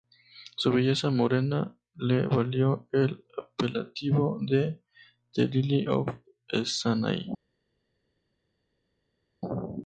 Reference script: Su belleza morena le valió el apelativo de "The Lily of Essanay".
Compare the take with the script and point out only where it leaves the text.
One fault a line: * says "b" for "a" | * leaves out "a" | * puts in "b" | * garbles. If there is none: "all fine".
all fine